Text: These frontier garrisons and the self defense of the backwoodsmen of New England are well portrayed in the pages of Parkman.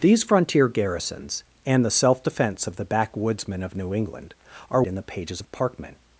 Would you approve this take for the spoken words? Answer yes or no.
no